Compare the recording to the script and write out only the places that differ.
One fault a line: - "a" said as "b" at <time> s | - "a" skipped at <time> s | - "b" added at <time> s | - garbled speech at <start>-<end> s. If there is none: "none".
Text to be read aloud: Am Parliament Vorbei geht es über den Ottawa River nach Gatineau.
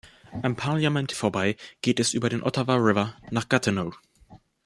none